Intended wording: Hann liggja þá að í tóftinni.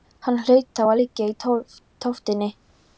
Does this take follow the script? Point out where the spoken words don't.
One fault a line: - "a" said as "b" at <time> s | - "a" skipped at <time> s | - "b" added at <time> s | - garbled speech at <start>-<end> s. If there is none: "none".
- "liggja" said as "hlaut" at 0.5 s
- "liggja" added at 1.0 s